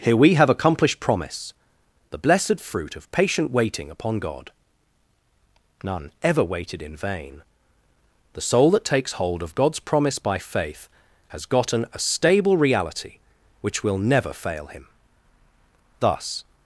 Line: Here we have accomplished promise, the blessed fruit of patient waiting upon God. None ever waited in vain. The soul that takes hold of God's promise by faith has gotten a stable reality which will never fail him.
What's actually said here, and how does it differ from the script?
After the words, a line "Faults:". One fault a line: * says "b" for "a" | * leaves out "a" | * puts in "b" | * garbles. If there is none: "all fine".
Here we have accomplished promise, the blessed fruit of patient waiting upon God. None ever waited in vain. The soul that takes hold of God's promise by faith has gotten a stable reality which will never fail him. Thus
Faults:
* puts in "Thus"